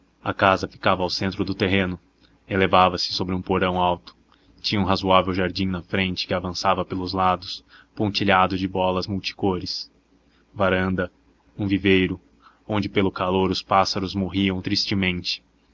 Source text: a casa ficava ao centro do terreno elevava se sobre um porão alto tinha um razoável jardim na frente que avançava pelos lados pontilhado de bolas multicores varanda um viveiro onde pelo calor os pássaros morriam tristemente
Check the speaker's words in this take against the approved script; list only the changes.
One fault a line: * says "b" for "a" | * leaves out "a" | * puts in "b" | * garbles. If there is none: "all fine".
all fine